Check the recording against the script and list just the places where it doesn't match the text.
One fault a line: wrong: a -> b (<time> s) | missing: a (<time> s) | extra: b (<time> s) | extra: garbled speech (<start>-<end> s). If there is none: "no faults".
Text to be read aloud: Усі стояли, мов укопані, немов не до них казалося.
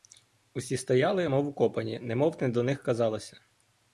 no faults